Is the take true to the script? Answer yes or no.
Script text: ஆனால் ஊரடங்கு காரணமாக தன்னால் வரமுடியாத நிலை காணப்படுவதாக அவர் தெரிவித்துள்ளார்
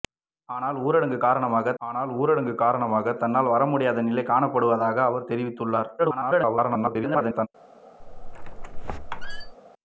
no